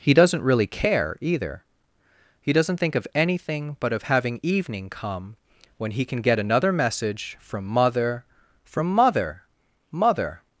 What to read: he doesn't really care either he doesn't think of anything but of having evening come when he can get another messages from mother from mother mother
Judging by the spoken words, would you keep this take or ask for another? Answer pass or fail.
fail